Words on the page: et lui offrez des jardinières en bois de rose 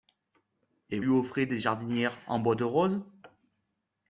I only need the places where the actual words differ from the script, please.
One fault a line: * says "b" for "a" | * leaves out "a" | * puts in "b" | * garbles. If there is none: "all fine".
all fine